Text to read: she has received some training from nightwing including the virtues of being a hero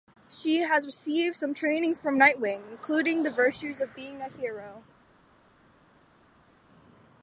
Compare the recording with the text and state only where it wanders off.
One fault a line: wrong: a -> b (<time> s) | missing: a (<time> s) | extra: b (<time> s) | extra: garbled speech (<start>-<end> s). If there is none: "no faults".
no faults